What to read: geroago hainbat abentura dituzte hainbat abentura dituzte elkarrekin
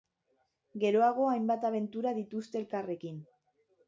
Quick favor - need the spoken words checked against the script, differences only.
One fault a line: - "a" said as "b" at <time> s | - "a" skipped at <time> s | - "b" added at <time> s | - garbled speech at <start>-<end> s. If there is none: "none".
- "hainbat abentura dituzte" skipped at 2.6 s